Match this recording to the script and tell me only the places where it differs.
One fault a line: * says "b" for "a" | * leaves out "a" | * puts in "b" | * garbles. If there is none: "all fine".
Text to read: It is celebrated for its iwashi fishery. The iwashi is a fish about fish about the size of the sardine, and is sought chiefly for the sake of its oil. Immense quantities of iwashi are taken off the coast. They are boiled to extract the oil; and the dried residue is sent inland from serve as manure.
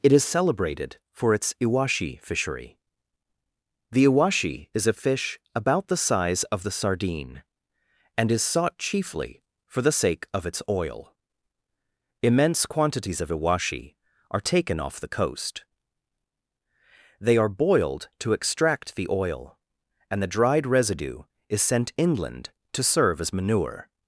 * leaves out "fish about"
* says "to" for "from"